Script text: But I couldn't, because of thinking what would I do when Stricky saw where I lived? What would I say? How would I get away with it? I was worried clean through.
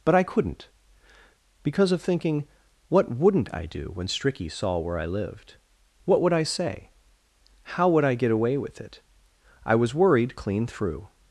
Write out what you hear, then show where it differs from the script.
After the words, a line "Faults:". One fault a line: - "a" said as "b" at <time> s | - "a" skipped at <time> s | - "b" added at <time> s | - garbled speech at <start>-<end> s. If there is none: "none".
But I couldn't, because of thinking what wouldn't I do when Stricky saw where I lived? What would I say? How would I get away with it? I was worried clean through.
Faults:
- "would" said as "wouldn't" at 3.1 s